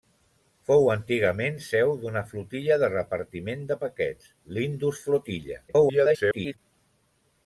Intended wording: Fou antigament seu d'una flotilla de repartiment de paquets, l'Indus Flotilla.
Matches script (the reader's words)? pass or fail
fail